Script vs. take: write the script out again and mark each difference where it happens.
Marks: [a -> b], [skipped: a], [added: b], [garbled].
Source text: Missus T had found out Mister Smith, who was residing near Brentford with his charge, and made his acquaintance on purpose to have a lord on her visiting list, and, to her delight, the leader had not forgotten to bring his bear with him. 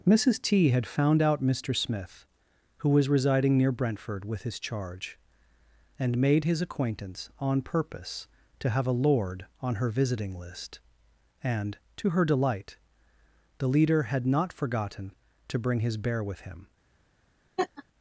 Missus T had found out Mister Smith, who was residing near Brentford with his charge, and made his acquaintance on purpose to have a lord on her visiting list, and, to her delight, the leader had not forgotten to bring his bear with him.